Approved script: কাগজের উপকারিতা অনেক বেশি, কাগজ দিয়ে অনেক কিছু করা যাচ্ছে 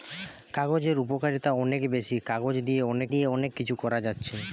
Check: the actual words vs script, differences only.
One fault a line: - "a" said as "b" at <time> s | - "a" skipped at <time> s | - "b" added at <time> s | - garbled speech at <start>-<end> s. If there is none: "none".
- "দিয়ে অনেক" added at 3.1 s